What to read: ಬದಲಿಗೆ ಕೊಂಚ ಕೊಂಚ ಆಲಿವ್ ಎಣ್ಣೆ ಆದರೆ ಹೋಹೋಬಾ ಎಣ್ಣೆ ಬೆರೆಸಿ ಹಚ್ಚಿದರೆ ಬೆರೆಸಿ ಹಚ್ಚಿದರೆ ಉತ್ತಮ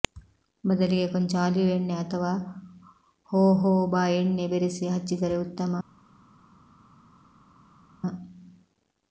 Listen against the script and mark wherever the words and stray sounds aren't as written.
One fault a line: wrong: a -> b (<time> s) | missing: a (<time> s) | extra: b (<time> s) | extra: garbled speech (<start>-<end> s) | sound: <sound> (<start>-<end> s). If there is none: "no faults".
missing: ಕೊಂಚ (1.3 s)
wrong: ಆದರೆ -> ಅಥವಾ (1.9 s)
missing: ಬೆರೆಸಿ ಹಚ್ಚಿದರೆ (5.4 s)